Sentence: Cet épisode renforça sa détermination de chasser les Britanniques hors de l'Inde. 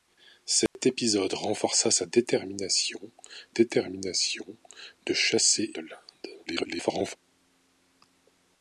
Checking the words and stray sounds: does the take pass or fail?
fail